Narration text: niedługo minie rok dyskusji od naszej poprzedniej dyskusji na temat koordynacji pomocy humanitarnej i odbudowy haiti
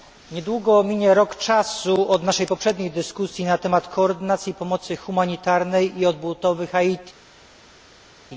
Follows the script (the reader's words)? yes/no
no